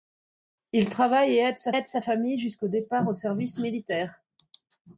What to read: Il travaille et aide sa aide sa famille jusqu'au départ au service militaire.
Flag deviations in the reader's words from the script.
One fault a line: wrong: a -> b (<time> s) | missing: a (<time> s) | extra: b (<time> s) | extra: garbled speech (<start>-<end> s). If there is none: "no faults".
no faults